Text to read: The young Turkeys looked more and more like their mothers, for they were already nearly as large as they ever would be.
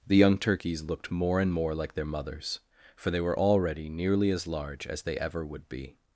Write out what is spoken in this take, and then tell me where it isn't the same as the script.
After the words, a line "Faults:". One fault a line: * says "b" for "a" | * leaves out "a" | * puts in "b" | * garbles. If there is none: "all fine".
The young Turkeys looked more and more like their mothers, for they were already nearly as large as they ever would be.
Faults:
all fine